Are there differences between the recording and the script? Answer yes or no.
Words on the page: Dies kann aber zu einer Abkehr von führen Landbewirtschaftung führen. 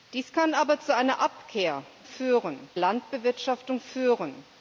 no